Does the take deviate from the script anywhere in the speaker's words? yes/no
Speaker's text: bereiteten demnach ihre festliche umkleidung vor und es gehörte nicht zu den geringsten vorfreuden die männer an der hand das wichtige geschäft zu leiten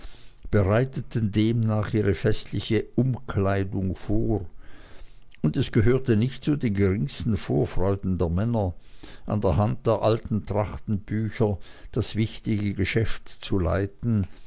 yes